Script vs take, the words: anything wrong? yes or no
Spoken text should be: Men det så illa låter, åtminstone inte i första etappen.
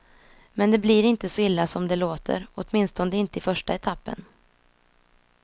yes